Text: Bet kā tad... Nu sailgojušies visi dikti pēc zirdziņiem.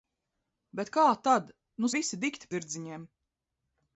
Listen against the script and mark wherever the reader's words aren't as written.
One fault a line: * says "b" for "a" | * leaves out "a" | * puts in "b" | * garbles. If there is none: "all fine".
* leaves out "sailgojušies"
* leaves out "pēc"